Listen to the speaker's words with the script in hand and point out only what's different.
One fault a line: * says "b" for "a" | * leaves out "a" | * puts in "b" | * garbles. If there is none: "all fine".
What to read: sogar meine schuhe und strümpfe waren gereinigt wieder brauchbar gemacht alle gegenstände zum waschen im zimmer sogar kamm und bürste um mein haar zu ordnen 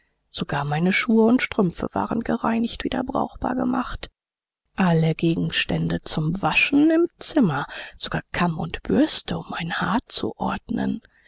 all fine